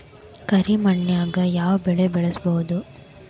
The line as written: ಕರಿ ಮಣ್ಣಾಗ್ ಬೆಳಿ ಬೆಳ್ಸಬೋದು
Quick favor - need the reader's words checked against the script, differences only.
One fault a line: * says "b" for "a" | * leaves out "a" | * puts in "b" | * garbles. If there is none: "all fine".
* puts in "ಯಾವ್"